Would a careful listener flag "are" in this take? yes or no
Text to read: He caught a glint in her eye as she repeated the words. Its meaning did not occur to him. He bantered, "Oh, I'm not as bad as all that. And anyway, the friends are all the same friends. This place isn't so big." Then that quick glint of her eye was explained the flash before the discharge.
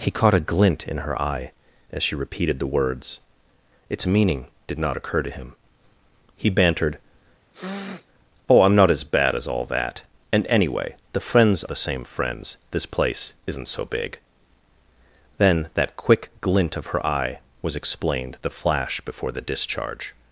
yes